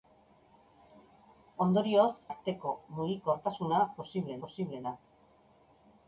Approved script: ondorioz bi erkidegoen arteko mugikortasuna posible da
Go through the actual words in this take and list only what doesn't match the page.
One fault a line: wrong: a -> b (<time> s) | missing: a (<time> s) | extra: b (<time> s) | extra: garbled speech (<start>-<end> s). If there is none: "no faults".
missing: bi erkidegoen (2.1 s)
extra: posible (4.4 s)